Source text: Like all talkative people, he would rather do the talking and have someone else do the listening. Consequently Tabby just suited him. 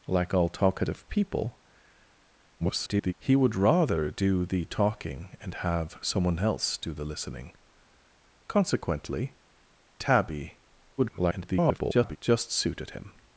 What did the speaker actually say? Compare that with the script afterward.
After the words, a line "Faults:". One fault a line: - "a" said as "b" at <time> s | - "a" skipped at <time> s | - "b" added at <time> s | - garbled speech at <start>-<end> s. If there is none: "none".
Like all talkative people, [garbled] he would rather do the talking and have someone else do the listening. Consequently Tabby [garbled] just suited him.
Faults:
- garbled speech at 2.6-3.1 s
- garbled speech at 11.0-12.2 s